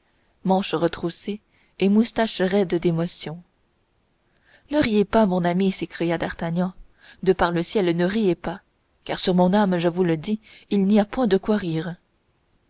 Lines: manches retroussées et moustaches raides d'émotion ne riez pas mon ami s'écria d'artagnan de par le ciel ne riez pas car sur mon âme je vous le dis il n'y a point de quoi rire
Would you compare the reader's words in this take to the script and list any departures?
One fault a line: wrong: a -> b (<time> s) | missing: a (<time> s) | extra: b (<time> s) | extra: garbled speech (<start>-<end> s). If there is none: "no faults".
no faults